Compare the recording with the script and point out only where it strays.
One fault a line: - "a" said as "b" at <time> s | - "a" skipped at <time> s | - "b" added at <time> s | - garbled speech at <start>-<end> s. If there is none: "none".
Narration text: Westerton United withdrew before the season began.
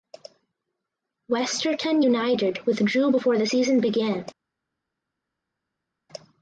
none